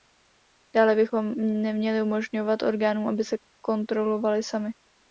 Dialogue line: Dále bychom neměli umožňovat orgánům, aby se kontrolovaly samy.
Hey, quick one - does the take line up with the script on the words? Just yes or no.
yes